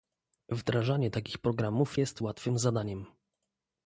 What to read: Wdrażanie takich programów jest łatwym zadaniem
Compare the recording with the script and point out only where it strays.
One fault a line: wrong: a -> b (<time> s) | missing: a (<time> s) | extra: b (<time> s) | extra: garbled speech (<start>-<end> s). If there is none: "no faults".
no faults